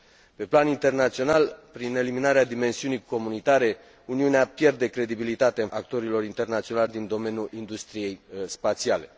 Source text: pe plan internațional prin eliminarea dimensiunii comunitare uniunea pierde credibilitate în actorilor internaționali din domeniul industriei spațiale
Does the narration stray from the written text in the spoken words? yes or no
no